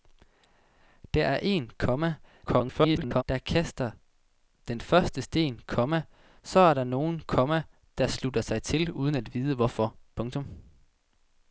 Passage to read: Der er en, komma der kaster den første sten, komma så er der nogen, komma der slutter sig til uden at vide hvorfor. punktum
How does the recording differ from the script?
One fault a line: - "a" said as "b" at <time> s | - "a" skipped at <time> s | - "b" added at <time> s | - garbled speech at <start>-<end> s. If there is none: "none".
- garbled speech at 2.5-3.2 s